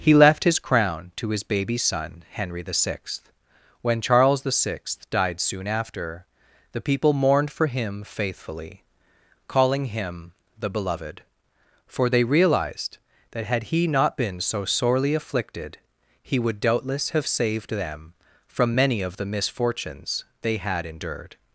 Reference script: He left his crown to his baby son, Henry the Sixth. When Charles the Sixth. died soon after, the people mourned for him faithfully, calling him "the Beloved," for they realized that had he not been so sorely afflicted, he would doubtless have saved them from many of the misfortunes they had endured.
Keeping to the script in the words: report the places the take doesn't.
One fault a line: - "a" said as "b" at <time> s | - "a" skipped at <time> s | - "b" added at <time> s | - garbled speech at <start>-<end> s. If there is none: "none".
none